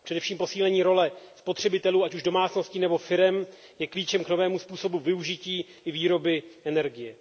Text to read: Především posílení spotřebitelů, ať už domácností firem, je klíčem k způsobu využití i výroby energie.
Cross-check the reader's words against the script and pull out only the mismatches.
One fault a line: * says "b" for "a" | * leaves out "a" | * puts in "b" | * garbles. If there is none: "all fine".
* puts in "role"
* puts in "nebo"
* puts in "novému"